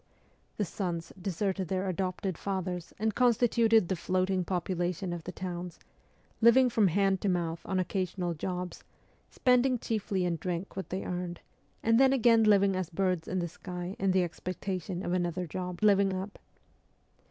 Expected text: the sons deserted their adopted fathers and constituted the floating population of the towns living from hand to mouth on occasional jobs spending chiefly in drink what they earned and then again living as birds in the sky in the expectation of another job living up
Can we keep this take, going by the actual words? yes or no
yes